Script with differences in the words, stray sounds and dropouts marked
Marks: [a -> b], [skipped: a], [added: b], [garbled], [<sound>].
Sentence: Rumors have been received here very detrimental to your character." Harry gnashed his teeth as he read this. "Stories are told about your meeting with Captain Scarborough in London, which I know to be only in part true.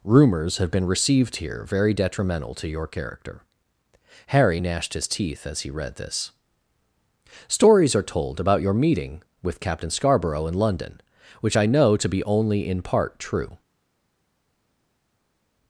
Rumors have been received here very detrimental to your character." Harry gnashed his teeth as he read this. "Stories are told about your meeting with Captain Scarborough in London, which I know to be only in part true.